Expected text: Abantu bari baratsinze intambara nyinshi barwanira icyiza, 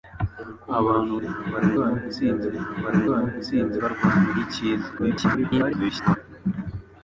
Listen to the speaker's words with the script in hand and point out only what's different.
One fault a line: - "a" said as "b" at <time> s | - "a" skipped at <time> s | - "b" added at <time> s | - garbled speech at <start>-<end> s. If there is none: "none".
- "bari" said as "intambara" at 1.2 s
- "nyinshi" said as "baratsinze" at 3.1 s
- garbled speech at 5.0-6.2 s